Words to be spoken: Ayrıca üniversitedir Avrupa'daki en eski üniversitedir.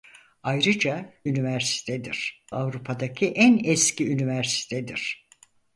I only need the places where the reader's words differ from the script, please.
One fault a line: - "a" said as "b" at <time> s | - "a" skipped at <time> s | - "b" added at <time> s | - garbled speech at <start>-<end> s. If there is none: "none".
none